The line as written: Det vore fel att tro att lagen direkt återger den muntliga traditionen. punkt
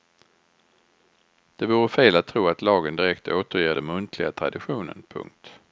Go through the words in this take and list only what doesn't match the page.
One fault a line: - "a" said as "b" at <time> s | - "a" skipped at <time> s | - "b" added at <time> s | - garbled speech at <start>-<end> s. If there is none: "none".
none